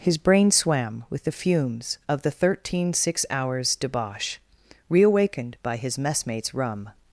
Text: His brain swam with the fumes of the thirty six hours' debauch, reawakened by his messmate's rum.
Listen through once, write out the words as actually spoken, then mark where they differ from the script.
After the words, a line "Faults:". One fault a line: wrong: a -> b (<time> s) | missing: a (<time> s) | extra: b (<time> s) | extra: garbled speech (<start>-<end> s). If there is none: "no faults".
His brain swam with the fumes of the thirteen six hours' debauch, reawakened by his messmate's rum.
Faults:
wrong: thirty -> thirteen (2.3 s)